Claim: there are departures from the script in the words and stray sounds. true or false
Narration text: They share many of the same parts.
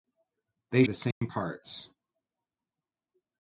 true